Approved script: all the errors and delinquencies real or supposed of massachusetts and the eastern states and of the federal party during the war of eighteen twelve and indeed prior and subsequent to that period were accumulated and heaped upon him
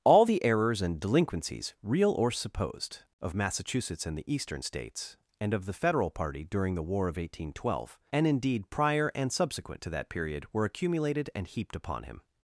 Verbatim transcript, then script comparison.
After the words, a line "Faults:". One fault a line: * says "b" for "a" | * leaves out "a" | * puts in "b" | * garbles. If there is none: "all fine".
all the errors and delinquencies real or supposed of massachusetts and the eastern states and of the federal party during the war of eighteen twelve and indeed prior and subsequent to that period were accumulated and heaped upon him
Faults:
all fine